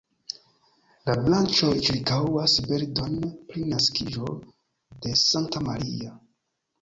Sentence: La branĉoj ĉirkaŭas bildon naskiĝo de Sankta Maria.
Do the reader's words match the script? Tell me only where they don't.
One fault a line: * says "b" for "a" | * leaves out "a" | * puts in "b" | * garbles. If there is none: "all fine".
* puts in "pri"